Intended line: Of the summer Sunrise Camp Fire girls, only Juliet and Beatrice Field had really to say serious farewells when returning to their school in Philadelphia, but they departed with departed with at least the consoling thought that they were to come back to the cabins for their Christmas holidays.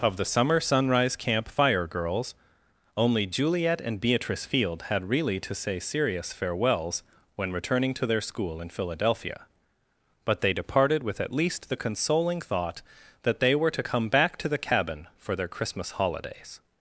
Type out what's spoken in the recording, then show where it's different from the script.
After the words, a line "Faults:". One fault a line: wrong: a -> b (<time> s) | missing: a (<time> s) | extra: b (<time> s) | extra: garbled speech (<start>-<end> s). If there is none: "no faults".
Of the summer Sunrise Camp Fire girls, only Juliet and Beatrice Field had really to say serious farewells when returning to their school in Philadelphia, but they departed with at least the consoling thought that they were to come back to the cabin for their Christmas holidays.
Faults:
missing: departed with (11.2 s)
wrong: cabins -> cabin (14.6 s)